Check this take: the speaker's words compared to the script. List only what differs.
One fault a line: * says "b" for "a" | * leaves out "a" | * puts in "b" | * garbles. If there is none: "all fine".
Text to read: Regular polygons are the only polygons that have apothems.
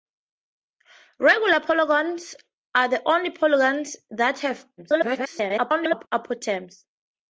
* garbles